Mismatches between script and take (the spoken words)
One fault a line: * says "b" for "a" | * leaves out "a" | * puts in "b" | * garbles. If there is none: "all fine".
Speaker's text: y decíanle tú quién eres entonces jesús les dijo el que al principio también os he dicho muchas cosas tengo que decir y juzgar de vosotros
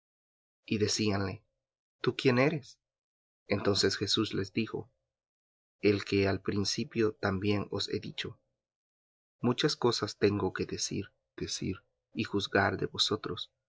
* puts in "decir"